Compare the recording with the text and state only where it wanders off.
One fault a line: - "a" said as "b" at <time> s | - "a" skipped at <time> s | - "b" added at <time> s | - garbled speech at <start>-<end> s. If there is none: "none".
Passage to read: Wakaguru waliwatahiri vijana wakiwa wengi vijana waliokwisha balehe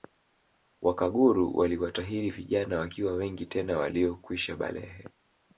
- "vijana" said as "tena" at 3.5 s